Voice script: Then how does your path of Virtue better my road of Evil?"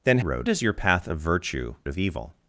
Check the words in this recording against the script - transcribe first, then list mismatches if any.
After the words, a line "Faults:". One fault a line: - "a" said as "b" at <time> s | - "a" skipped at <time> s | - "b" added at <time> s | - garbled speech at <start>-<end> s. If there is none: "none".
Then road does your path of Virtue of Evil?"
Faults:
- "how" said as "road" at 0.2 s
- "better my road" skipped at 1.7 s